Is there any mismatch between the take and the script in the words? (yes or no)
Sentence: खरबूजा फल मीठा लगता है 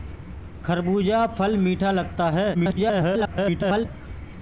yes